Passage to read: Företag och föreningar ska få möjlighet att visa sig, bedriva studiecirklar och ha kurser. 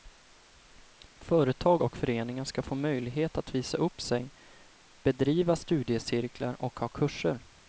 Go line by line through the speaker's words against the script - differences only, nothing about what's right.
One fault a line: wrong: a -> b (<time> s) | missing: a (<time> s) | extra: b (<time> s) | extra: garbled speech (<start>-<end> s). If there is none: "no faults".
extra: upp (3.8 s)